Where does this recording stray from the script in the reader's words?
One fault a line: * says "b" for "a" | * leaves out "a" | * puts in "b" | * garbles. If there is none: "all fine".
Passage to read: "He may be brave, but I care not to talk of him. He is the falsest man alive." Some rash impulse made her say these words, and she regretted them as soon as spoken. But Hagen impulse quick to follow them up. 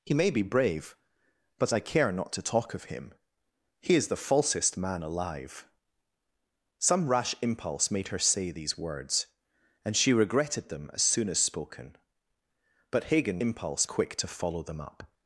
all fine